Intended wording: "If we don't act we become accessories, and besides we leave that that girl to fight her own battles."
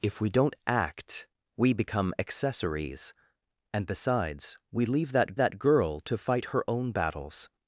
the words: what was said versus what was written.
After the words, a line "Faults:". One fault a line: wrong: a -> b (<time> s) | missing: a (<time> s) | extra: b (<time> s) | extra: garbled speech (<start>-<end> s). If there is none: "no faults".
"If we don't act we become accessories, and besides we leave that that girl to fight her own battles."
Faults:
no faults